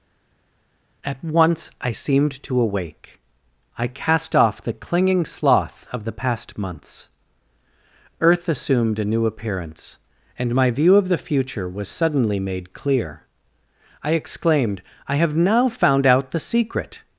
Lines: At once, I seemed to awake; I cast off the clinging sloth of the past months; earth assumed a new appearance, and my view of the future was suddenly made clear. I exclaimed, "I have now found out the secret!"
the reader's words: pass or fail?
pass